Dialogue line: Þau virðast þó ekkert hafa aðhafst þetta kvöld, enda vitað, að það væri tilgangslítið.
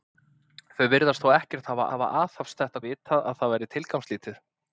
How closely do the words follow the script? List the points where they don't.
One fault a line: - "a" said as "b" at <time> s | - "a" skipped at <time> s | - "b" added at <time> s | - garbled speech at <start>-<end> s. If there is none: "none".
- "hafa" added at 1.9 s
- "kvöld enda" skipped at 2.8 s